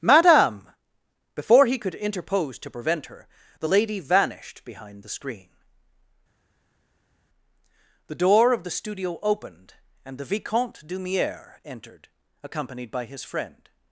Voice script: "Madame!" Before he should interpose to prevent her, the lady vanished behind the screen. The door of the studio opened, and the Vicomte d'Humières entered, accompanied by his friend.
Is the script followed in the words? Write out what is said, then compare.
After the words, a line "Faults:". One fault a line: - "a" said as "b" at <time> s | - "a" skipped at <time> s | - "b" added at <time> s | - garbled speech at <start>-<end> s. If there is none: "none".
"Madame!" Before he could interpose to prevent her, the lady vanished behind the screen. The door of the studio opened, and the Vicomte d'Humières entered, accompanied by his friend.
Faults:
- "should" said as "could" at 1.8 s